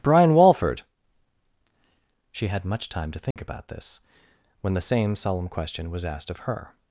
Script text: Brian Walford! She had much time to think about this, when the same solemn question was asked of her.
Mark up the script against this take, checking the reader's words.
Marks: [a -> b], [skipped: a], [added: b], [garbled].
Brian Walford! She had much time to think about this, when the same solemn question was asked of her.